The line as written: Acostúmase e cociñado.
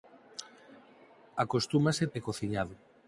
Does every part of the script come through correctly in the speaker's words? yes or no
yes